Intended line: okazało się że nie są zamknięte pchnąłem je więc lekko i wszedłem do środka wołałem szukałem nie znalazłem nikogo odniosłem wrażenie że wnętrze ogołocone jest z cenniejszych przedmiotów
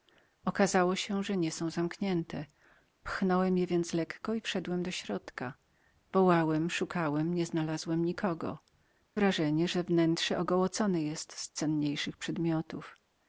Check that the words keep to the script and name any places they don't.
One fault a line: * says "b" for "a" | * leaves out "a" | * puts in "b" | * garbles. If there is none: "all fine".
* leaves out "odniosłem"